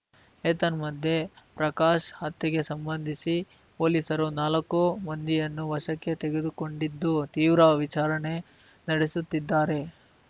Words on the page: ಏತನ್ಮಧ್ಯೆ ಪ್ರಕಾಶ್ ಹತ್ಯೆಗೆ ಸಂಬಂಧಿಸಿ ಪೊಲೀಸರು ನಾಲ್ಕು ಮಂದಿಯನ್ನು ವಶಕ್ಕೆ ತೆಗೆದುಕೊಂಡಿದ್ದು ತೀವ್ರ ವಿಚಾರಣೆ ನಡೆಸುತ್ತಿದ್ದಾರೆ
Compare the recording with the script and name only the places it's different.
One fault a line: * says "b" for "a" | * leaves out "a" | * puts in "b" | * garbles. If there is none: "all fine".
all fine